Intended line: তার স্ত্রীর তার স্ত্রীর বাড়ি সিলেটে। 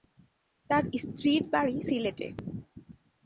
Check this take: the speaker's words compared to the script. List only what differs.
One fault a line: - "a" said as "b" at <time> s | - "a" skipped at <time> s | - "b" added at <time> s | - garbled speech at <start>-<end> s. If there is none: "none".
- "তার স্ত্রীর" skipped at 1.4 s